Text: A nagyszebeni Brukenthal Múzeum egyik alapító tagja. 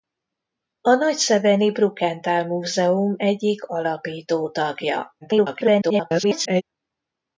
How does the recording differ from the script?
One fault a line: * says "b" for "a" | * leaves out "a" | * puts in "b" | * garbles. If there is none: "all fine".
* garbles